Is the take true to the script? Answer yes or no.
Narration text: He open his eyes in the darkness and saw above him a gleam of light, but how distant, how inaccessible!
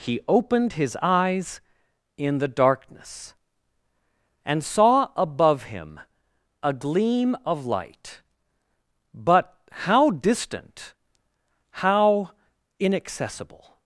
no